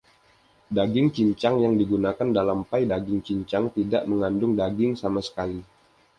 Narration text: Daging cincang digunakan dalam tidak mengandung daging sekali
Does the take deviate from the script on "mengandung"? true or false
false